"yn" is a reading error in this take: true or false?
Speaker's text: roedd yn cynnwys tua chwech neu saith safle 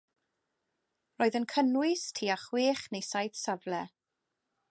false